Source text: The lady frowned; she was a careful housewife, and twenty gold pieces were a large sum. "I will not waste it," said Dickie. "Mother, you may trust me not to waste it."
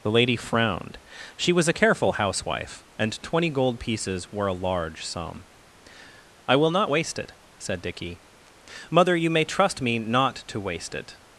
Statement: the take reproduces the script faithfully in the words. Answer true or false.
true